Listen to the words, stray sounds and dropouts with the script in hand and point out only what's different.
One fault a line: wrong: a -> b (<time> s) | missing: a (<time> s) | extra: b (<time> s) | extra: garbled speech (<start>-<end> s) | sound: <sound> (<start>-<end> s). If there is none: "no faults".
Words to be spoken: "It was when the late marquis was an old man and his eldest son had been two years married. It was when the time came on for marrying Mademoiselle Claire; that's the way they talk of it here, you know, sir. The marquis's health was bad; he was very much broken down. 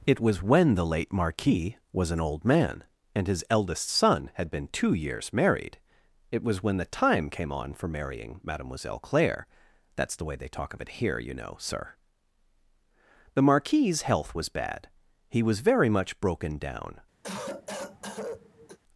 sound: cough (17.2-18.8 s)